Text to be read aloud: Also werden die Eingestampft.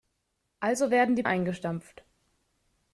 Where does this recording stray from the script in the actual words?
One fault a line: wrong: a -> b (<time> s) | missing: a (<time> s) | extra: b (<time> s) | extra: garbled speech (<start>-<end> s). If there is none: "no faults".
no faults